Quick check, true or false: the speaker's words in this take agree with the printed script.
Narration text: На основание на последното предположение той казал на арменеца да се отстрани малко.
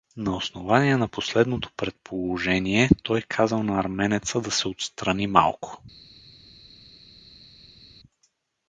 true